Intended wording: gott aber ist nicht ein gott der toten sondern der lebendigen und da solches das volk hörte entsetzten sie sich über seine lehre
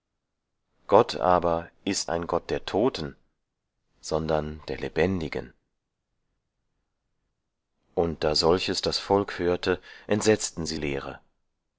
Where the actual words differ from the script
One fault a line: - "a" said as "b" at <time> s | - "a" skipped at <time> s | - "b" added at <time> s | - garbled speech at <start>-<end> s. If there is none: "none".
- "nicht" skipped at 2.1 s
- "sich über seine" skipped at 10.8 s